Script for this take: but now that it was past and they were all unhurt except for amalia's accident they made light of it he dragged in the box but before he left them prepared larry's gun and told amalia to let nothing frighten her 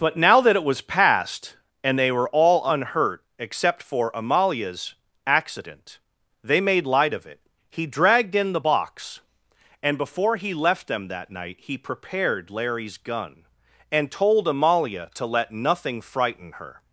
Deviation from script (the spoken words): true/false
true